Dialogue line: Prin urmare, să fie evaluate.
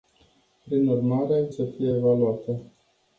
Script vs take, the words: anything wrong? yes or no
no